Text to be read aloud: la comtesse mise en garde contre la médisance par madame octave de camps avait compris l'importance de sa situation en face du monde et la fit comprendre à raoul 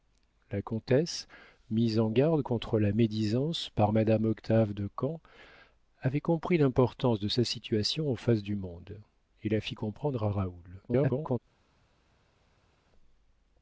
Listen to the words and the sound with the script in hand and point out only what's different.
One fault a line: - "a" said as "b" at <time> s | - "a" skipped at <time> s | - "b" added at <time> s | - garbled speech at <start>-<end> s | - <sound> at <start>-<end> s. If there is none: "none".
- garbled speech at 10.9-11.4 s